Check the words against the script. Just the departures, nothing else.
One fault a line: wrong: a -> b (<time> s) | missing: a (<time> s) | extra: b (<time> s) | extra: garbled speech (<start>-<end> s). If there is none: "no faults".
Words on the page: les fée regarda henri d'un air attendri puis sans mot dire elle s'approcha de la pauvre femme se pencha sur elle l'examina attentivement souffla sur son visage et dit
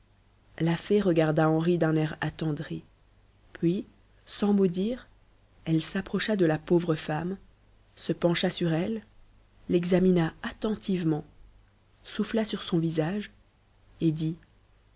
wrong: les -> la (0.6 s)